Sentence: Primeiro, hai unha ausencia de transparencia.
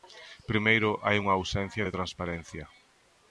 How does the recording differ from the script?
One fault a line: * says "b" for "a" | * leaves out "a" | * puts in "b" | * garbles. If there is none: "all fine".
all fine